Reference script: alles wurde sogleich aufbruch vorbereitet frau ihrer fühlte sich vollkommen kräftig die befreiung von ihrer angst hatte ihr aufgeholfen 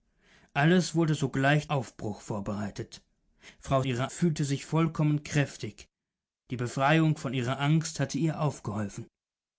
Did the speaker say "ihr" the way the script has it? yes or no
yes